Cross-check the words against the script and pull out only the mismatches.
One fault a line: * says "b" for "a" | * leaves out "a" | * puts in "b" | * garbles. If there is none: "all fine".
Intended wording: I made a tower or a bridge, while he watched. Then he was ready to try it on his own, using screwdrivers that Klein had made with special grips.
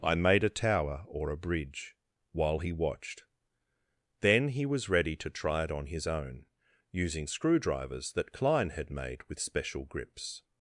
all fine